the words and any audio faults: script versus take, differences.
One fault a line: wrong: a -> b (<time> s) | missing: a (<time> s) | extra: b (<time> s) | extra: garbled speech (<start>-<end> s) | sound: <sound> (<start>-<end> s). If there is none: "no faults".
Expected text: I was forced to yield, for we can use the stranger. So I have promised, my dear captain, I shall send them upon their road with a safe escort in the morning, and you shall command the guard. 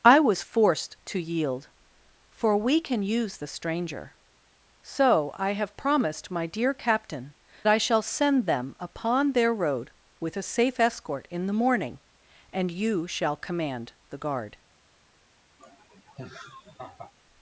sound: laugh (15.6-17.1 s)